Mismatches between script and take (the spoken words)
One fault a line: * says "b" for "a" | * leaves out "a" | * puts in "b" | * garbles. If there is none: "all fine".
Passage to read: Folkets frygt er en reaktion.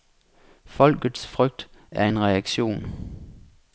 all fine